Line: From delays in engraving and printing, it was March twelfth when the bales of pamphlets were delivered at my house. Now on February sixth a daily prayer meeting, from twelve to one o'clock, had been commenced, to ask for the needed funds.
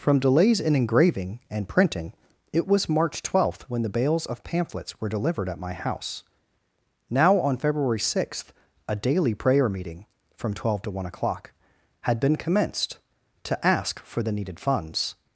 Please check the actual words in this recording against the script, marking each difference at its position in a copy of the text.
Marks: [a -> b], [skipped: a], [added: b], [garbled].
From delays in engraving and printing, it was March twelfth when the bales of pamphlets were delivered at my house. Now on February sixth a daily prayer meeting, from twelve to one o'clock, had been commenced, to ask for the needed funds.